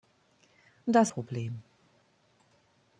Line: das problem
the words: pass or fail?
pass